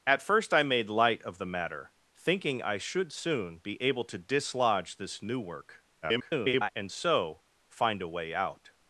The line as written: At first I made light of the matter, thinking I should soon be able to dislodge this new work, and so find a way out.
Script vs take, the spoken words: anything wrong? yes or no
yes